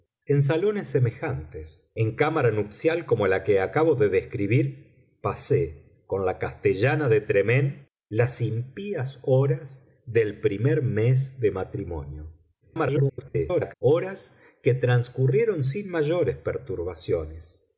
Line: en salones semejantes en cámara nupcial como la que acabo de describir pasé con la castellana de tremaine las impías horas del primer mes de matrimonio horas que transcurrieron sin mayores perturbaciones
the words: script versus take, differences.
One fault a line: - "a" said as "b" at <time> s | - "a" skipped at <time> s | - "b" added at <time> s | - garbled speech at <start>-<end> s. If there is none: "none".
- garbled speech at 12.6-13.7 s